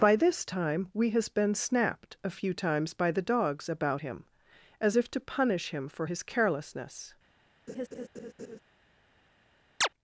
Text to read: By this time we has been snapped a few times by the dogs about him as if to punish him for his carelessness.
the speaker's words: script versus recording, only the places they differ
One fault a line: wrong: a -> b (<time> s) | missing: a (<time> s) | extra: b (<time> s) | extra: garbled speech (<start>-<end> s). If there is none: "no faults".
no faults